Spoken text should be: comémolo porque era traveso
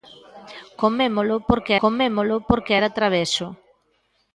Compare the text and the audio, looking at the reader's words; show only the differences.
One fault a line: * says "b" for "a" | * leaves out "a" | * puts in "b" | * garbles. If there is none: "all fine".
* puts in "comémolo porque"